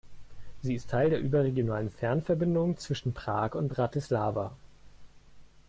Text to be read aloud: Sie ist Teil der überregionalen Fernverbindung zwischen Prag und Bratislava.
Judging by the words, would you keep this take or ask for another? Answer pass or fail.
pass